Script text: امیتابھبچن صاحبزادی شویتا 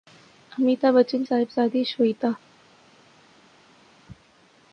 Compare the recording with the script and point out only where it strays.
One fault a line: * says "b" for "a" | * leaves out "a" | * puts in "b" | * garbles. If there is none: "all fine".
all fine